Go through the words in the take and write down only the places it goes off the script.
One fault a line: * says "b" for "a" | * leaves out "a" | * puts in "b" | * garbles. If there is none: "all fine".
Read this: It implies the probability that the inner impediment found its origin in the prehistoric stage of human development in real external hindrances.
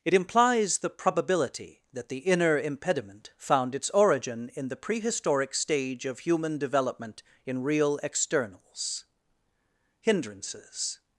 * says "externals" for "external"